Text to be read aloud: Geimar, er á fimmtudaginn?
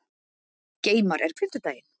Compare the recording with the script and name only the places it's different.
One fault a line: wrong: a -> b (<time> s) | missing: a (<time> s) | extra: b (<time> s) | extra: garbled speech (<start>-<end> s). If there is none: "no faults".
no faults